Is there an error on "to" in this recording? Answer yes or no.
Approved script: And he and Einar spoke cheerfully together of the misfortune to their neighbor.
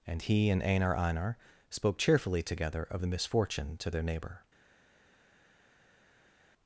no